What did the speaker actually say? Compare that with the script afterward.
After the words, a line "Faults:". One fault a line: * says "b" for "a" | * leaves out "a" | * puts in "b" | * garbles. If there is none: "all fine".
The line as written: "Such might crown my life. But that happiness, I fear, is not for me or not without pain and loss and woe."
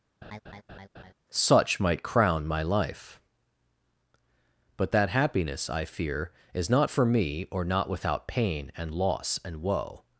"Such might crown my life. But that happiness, I fear, is not for me or not without pain and loss and woe."
Faults:
all fine